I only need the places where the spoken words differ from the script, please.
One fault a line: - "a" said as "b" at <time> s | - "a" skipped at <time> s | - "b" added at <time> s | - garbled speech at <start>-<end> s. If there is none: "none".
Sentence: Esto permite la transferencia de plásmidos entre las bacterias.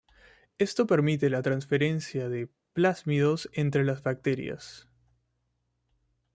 none